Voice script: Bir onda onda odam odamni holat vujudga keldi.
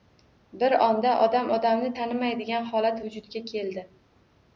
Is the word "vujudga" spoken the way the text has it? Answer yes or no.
yes